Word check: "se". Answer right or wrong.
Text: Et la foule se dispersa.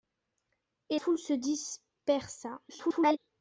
right